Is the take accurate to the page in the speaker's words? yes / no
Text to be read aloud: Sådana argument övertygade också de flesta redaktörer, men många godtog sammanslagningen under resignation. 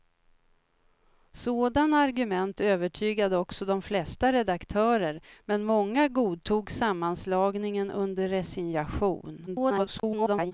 no